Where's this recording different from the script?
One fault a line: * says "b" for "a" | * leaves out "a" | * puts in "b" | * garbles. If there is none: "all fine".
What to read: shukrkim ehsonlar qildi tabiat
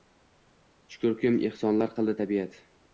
all fine